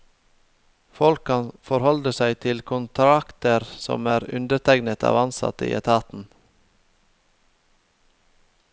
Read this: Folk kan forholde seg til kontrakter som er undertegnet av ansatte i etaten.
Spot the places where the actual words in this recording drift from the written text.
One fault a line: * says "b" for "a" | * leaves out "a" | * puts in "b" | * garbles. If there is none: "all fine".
all fine